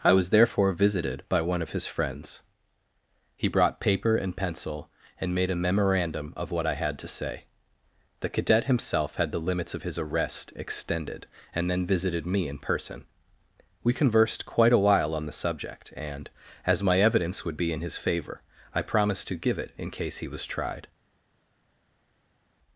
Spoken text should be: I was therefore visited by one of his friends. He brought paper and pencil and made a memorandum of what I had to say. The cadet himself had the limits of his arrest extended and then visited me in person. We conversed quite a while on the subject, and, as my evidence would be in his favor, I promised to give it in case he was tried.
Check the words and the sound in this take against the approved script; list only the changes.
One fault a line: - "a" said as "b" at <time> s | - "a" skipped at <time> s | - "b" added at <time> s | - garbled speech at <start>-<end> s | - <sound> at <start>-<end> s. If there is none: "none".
none